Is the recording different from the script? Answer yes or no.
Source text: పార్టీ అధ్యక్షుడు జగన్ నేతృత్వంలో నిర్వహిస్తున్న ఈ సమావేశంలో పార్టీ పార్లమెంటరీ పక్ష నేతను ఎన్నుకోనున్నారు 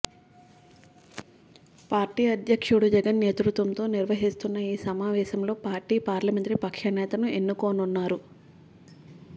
no